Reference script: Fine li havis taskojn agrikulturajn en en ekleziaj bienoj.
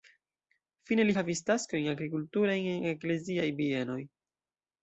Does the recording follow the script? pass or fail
fail